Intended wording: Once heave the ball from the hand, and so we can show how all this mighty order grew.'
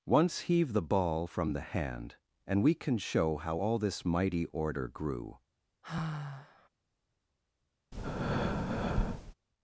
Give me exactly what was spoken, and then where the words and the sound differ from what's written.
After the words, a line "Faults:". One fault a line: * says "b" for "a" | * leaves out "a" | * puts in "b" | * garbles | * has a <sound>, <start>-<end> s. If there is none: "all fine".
Once heave the ball from the hand, and we can show how all this mighty order grew.'
Faults:
* leaves out "so"
* has a sigh, 5.8-6.7 s
* has a breath, 7.9-9.3 s